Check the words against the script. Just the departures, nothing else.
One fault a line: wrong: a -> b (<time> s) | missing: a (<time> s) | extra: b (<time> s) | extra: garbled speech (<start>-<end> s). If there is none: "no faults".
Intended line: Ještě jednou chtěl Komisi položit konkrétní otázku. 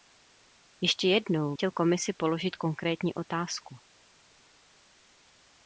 no faults